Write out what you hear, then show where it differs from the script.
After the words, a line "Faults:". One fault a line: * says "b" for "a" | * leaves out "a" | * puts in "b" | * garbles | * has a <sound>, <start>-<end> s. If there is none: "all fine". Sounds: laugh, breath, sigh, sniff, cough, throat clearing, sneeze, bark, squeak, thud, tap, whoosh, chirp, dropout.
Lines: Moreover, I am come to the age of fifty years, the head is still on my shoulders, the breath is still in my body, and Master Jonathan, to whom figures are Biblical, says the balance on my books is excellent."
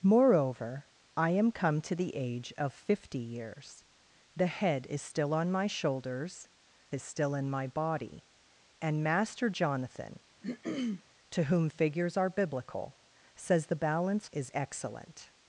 Moreover, I am come to the age of fifty years, the head is still on my shoulders, is still in my body, and Master Jonathan, to whom figures are Biblical, says the balance is excellent."
Faults:
* leaves out "the breath"
* has a throat clearing, 10.4-11.0 s
* leaves out "on my books"